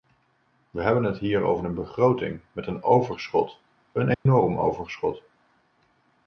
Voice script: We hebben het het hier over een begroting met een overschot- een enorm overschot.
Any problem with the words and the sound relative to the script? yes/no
yes